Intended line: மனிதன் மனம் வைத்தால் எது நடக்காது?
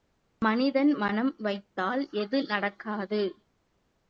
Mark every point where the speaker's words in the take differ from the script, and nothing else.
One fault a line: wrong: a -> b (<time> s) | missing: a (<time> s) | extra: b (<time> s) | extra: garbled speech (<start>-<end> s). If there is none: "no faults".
no faults